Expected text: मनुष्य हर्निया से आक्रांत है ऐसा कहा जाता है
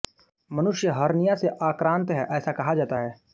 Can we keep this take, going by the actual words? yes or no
yes